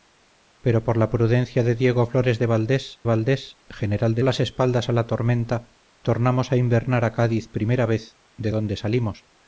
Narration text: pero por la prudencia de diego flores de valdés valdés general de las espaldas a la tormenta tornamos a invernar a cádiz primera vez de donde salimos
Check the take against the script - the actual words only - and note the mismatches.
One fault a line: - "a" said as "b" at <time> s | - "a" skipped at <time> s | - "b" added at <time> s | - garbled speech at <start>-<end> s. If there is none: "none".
none